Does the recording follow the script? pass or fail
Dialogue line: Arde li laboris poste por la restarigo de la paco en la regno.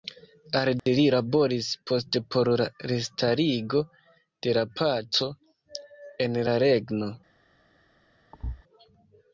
pass